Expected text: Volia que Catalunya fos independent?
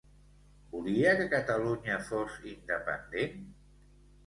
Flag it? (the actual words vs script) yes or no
no